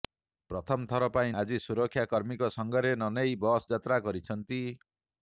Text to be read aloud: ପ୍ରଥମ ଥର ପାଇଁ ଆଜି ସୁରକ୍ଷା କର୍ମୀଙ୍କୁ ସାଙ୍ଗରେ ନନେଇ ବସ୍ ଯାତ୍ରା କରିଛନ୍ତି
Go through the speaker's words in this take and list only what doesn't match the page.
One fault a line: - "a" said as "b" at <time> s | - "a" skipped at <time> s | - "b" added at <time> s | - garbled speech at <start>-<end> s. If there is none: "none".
none